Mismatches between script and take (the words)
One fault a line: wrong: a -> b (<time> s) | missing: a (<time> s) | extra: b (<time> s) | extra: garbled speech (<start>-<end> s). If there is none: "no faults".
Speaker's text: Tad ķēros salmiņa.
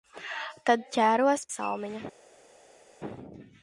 no faults